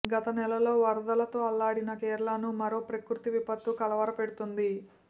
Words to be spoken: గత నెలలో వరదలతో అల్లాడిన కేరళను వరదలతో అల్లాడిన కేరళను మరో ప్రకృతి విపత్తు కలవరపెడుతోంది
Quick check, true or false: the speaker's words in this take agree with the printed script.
false